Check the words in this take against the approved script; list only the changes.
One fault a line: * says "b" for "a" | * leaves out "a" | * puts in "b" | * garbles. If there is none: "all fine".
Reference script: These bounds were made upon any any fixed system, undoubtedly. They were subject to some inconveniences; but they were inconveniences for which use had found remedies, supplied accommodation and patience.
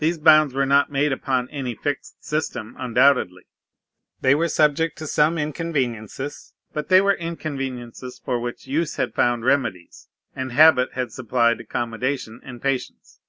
* puts in "not"
* leaves out "any"
* puts in "and habit had"